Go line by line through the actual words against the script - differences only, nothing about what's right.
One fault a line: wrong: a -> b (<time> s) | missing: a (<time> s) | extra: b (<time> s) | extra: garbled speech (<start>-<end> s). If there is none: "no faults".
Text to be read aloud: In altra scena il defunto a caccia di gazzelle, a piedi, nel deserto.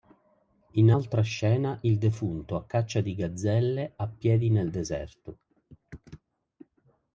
no faults